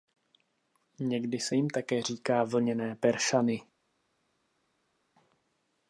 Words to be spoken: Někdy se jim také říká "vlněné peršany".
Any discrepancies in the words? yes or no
no